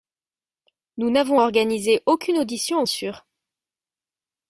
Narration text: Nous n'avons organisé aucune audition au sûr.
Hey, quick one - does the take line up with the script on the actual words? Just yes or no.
yes